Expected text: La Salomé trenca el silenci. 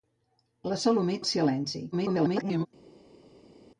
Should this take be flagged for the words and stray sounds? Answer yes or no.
yes